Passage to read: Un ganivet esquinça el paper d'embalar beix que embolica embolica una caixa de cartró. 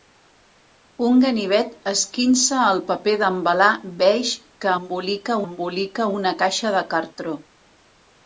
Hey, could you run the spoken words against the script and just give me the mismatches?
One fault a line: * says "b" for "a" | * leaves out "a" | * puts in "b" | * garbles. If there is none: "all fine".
all fine